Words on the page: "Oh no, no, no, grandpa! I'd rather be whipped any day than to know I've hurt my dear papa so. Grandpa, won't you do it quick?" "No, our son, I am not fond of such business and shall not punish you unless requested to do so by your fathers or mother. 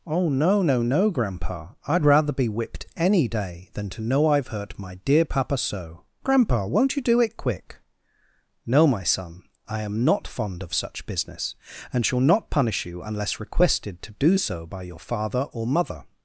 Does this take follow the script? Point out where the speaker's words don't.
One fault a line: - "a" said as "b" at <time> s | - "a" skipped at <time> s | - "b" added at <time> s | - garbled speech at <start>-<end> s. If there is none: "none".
- "our" said as "my" at 8.9 s
- "fathers" said as "father" at 15.0 s